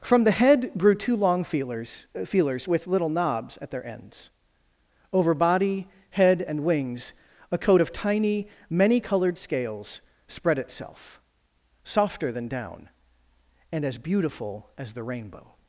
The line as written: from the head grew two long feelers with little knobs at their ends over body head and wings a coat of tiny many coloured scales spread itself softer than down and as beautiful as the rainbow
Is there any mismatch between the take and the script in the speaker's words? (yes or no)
yes